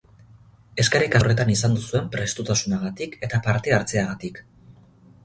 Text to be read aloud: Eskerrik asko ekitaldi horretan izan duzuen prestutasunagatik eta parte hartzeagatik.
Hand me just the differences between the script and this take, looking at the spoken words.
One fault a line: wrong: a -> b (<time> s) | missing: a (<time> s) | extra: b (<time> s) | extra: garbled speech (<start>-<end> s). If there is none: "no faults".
missing: asko ekitaldi (1.2 s)